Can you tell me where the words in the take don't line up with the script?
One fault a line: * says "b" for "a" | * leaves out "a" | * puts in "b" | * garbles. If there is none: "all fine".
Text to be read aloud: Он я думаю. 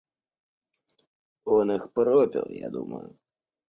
* puts in "их пропил"